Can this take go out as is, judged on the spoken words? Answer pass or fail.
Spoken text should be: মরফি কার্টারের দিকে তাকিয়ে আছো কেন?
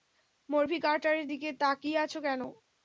pass